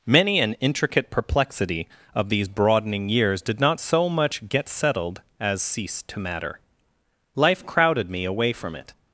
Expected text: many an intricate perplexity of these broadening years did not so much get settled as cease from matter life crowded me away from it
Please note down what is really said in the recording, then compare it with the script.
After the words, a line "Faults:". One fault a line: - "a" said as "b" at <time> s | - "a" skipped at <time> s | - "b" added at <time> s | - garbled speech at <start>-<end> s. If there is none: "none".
many an intricate perplexity of these broadening years did not so much get settled as cease to matter life crowded me away from it
Faults:
- "from" said as "to" at 6.0 s